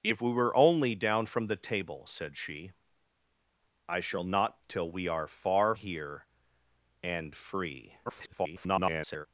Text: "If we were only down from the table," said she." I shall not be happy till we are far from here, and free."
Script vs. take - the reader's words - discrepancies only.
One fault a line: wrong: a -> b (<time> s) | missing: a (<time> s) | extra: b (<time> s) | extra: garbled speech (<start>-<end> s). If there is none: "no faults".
missing: be happy (4.6 s)
missing: from (5.7 s)
extra: garbled speech (8.1-9.3 s)